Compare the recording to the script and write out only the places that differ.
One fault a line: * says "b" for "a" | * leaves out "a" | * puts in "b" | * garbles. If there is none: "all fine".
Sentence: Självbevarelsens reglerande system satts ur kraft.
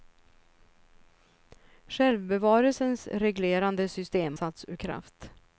all fine